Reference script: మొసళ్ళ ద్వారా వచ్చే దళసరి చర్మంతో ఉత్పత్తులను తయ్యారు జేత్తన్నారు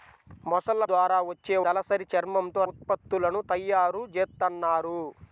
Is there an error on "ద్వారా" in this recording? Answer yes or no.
no